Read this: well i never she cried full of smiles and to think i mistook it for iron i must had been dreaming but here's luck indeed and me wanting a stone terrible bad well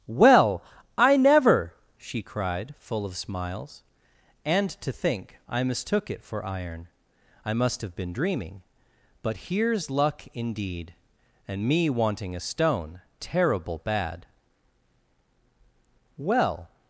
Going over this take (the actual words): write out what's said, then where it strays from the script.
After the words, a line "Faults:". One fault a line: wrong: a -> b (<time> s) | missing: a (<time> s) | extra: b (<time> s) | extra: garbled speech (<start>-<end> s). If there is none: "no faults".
well i never she cried full of smiles and to think i mistook it for iron i must have been dreaming but here's luck indeed and me wanting a stone terrible bad well
Faults:
wrong: had -> have (7.8 s)